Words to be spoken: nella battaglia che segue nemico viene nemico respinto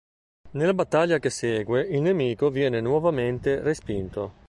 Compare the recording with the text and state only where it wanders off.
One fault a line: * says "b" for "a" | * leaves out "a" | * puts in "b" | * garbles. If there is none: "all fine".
* puts in "il"
* says "nuovamente" for "nemico"